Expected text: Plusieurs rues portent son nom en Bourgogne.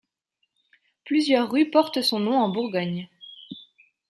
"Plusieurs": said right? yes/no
yes